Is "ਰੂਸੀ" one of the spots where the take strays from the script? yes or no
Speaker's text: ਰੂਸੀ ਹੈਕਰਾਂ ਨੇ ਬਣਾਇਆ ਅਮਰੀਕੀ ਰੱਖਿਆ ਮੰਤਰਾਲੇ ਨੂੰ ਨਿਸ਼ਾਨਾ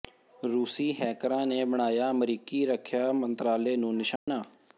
no